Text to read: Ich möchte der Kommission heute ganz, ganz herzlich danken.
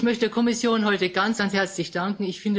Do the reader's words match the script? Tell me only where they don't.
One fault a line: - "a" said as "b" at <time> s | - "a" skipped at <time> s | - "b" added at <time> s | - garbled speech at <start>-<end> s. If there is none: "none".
none